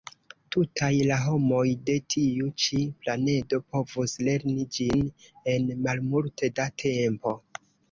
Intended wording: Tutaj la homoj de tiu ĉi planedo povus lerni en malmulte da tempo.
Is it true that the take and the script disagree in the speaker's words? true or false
true